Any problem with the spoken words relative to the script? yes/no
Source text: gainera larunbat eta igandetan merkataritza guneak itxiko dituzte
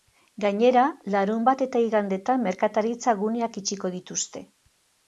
no